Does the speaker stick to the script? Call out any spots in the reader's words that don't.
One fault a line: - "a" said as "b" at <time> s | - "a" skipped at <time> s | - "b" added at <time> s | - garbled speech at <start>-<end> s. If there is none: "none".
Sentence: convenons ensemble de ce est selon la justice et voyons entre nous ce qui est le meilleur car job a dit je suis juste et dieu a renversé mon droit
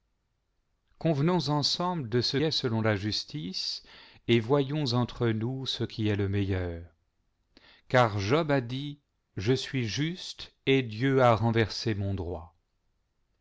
none